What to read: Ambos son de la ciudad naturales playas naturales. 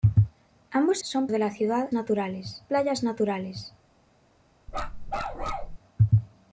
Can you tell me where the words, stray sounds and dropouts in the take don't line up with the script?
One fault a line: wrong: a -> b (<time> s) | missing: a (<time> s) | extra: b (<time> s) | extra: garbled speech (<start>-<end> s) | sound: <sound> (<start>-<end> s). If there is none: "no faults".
sound: bark (4.7-5.8 s)